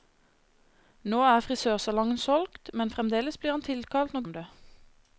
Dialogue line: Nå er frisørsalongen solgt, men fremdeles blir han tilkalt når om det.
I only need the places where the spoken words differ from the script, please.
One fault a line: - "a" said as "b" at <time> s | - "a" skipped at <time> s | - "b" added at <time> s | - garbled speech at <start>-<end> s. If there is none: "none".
none